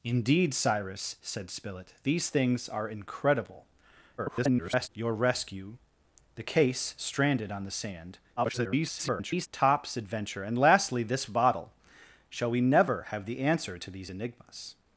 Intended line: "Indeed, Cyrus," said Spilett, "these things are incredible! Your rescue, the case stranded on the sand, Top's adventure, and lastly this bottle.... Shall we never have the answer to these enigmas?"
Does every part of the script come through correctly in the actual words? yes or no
no